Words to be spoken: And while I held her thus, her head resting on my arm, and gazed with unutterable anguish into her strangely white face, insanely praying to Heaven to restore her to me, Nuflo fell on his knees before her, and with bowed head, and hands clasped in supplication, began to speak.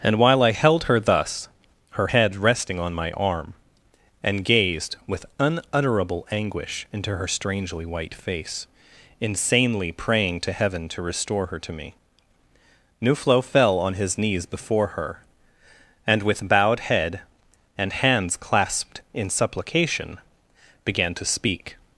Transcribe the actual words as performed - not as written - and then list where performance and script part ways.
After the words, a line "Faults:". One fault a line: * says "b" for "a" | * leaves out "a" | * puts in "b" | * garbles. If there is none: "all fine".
And while I held her thus, her head resting on my arm, and gazed with unutterable anguish into her strangely white face, insanely praying to Heaven to restore her to me, Nuflo fell on his knees before her, and with bowed head, and hands clasped in supplication, began to speak.
Faults:
all fine